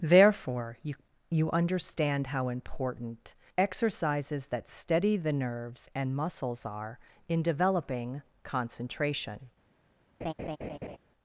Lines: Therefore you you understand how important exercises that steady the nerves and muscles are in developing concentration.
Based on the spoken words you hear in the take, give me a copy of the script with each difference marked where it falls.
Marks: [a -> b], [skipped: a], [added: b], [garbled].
Therefore you you understand how important exercises that steady the nerves and muscles are in developing concentration.